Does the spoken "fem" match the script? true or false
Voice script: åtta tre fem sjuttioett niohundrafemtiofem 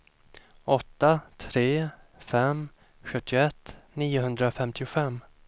true